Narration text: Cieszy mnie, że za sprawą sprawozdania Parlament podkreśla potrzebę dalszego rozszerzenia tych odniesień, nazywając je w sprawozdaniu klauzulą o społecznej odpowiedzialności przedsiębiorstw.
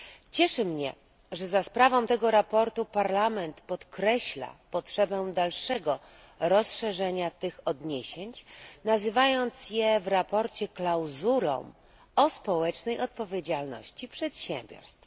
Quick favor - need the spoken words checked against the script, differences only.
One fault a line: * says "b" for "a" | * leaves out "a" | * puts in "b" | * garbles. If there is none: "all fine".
* puts in "tego"